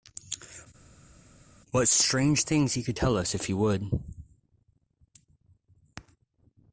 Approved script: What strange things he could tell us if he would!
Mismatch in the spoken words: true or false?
false